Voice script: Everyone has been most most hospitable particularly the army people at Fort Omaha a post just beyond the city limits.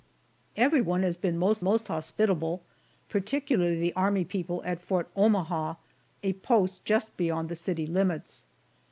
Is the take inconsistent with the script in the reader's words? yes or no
no